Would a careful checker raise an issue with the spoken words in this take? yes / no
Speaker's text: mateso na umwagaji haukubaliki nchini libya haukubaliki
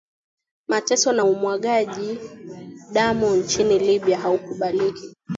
yes